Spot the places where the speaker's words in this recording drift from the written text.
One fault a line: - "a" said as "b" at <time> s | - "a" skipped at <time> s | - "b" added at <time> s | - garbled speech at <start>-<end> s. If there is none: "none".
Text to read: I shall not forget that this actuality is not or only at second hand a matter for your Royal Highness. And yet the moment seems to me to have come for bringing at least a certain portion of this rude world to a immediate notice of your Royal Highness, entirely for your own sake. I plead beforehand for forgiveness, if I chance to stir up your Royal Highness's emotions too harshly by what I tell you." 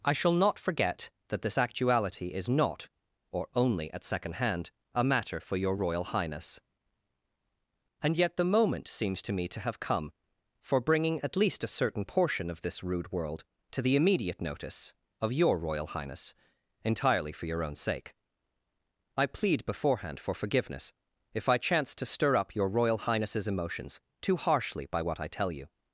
- "a" said as "the" at 13.8 s